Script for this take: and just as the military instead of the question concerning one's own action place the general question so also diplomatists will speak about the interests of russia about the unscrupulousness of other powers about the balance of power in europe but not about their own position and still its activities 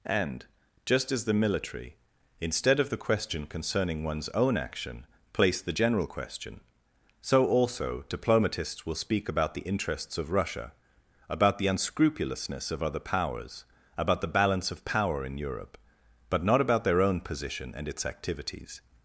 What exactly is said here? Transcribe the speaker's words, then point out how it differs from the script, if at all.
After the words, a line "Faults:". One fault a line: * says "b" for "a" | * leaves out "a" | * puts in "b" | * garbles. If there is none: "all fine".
and just as the military instead of the question concerning one's own action place the general question so also diplomatists will speak about the interests of russia about the unscrupulousness of other powers about the balance of power in europe but not about their own position and its activities
Faults:
* leaves out "still"